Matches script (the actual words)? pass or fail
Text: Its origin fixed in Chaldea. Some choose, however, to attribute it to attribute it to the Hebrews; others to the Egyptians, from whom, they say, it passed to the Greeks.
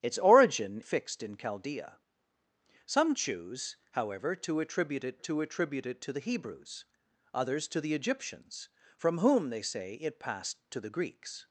pass